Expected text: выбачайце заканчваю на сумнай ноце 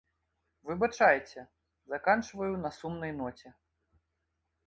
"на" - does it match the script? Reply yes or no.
yes